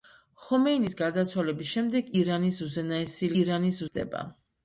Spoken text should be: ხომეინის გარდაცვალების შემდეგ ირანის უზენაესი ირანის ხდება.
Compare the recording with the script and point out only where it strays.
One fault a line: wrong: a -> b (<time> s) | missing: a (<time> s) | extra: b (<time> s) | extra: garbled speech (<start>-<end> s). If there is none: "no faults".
no faults